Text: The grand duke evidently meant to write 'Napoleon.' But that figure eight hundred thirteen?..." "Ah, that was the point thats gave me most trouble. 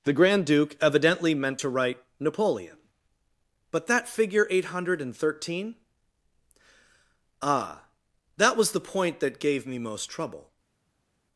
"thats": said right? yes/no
no